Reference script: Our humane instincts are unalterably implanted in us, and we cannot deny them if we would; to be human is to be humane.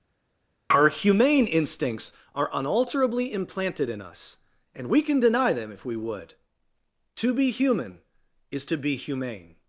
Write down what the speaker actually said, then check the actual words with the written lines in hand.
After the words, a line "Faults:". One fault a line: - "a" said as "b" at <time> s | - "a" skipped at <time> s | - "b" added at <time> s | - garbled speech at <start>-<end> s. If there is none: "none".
Our humane instincts are unalterably implanted in us, and we can deny them if we would; to be human is to be humane.
Faults:
- "cannot" said as "can" at 5.0 s